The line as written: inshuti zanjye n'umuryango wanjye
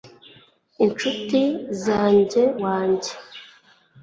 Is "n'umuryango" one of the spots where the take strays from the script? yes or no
yes